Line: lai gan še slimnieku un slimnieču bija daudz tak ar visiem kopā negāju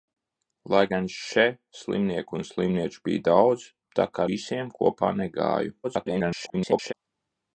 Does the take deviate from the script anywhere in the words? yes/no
yes